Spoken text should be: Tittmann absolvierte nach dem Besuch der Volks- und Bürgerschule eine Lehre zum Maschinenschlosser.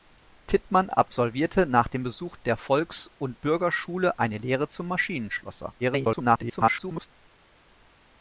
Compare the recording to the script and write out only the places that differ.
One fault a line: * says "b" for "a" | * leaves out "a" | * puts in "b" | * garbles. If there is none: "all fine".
* garbles